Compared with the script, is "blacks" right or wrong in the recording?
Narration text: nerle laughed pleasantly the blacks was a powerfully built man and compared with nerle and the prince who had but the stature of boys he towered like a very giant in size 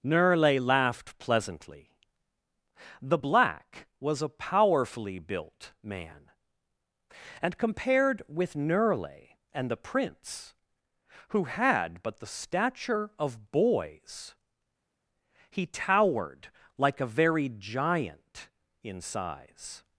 wrong